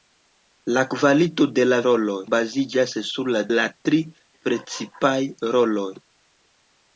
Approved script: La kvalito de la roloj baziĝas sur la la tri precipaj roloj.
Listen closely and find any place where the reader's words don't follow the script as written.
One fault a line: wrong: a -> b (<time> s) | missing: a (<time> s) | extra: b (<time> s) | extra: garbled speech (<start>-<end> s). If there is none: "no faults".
no faults